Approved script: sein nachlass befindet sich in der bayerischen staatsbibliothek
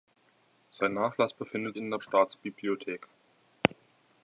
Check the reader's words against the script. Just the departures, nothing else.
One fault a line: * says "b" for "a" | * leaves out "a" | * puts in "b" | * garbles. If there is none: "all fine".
* leaves out "sich"
* leaves out "bayerischen"